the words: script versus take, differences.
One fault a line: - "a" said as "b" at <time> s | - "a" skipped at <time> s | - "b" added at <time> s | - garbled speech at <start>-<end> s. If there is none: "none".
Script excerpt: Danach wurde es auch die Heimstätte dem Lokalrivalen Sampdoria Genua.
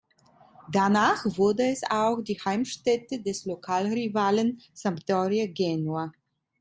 - "dem" said as "des" at 3.2 s